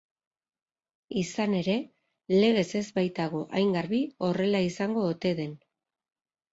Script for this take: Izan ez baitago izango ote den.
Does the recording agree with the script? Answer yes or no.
no